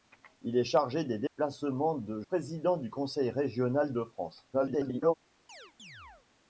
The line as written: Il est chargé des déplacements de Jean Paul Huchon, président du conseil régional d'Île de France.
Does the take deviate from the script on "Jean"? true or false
true